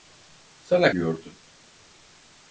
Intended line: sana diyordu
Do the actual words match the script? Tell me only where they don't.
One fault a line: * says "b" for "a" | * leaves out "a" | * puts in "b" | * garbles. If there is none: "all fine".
all fine